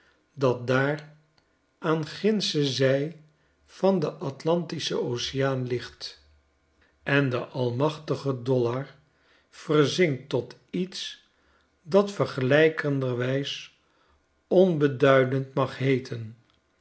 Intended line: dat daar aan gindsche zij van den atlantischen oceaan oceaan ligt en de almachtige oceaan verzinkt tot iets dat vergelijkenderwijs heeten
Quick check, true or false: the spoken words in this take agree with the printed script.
false